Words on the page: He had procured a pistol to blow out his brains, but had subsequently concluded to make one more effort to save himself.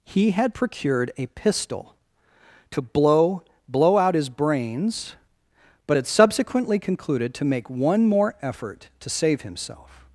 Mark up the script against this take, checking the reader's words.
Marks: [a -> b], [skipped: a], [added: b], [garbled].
He had procured a pistol to blow [added: blow] out his brains, but had subsequently concluded to make one more effort to save himself.